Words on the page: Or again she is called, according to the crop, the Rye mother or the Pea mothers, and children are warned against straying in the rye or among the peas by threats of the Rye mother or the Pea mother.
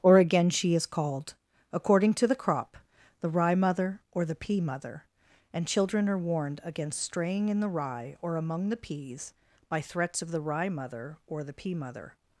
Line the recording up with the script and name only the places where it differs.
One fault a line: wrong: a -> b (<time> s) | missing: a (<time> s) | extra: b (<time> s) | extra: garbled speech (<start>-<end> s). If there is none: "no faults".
wrong: mothers -> mother (4.6 s)